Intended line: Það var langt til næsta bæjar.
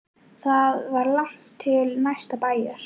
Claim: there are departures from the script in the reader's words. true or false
false